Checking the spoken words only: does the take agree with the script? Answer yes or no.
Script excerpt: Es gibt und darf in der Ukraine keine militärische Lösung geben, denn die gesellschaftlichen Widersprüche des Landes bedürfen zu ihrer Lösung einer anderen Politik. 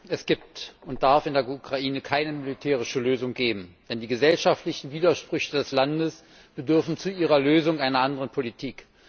yes